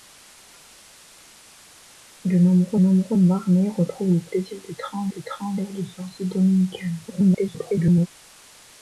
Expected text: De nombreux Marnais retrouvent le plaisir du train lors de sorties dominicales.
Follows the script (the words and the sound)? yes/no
no